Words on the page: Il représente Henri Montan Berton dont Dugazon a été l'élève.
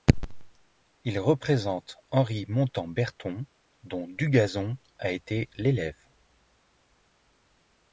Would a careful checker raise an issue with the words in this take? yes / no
no